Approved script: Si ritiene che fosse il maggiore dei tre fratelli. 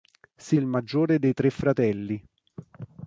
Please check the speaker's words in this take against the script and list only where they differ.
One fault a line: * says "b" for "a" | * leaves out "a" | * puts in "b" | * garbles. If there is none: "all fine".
* leaves out "ritiene che fosse"